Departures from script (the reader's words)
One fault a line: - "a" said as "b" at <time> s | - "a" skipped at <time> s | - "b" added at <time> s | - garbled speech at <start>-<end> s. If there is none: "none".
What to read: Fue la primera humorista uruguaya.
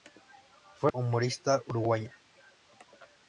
- "la primera" skipped at 0.9 s